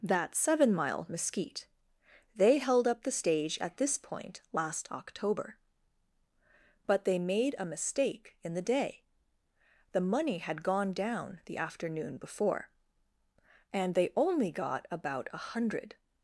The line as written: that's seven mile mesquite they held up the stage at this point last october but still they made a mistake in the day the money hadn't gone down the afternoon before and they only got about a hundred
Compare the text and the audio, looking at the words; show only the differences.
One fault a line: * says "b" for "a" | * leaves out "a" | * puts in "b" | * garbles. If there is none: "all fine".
* leaves out "still"
* says "had" for "hadn't"